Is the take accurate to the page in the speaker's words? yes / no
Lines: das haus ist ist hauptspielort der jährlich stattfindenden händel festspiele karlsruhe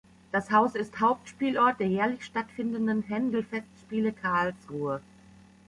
no